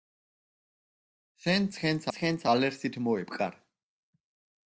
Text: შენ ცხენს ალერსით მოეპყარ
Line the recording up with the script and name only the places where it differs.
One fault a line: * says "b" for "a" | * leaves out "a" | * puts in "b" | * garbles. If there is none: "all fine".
* puts in "ცხენს"